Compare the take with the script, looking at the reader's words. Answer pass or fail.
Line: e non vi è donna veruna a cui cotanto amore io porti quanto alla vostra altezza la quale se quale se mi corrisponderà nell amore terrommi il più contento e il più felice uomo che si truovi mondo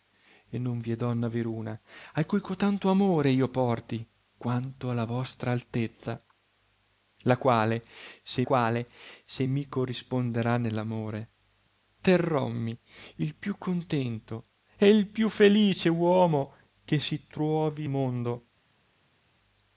pass